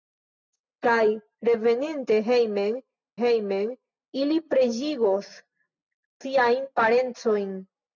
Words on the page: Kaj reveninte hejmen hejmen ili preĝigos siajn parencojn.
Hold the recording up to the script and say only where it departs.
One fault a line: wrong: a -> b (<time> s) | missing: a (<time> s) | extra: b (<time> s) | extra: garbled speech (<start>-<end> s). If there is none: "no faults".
no faults